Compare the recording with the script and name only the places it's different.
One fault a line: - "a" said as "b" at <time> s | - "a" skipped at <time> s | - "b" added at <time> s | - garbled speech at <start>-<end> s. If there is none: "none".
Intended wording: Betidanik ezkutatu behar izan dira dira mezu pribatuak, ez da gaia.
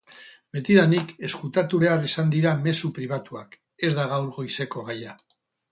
- "dira" skipped at 2.5 s
- "gaur goizeko" added at 4.2 s